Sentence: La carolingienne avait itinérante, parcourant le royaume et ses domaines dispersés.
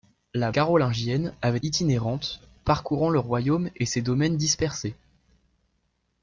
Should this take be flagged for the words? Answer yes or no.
no